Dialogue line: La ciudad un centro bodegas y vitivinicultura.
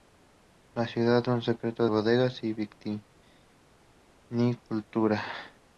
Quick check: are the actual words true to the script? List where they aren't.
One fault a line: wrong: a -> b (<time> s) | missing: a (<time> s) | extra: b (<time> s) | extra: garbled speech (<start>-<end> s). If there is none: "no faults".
no faults